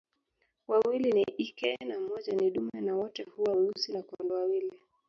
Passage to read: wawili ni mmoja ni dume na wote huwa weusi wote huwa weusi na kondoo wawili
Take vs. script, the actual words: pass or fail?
fail